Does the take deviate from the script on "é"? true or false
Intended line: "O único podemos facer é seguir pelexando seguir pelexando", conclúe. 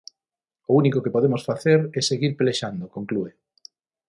false